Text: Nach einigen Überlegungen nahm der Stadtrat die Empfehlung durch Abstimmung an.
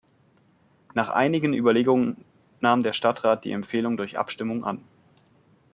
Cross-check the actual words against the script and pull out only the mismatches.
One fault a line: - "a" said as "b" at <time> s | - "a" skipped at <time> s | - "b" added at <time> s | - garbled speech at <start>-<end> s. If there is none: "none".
none